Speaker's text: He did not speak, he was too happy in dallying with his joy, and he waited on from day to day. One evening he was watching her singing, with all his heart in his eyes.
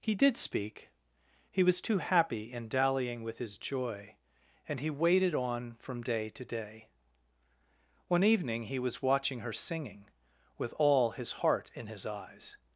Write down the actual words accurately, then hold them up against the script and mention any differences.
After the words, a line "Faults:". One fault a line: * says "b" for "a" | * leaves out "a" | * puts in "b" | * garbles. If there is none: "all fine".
He did speak, he was too happy in dallying with his joy, and he waited on from day to day. One evening he was watching her singing, with all his heart in his eyes.
Faults:
* leaves out "not"